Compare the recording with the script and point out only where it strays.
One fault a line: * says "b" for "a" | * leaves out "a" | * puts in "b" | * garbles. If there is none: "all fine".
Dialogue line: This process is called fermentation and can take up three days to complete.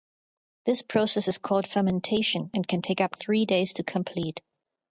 all fine